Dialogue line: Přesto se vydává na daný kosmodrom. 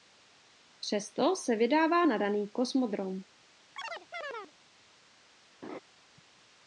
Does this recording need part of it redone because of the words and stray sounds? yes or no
yes